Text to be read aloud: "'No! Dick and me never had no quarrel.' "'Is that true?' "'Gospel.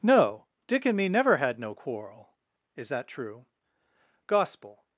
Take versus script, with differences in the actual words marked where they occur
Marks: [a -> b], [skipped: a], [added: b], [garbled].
"'No! Dick and me never had no quarrel.' "'Is that true?' "'Gospel.